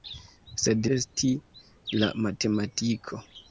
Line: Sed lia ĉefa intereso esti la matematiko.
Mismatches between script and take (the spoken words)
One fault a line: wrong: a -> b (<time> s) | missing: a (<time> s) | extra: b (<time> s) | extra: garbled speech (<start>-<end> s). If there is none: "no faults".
missing: lia ĉefa intereso (0.9 s)